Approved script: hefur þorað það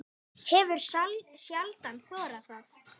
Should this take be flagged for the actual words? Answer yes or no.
yes